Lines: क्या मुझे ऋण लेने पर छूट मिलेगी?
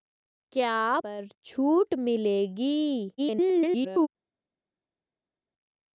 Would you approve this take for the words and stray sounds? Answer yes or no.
no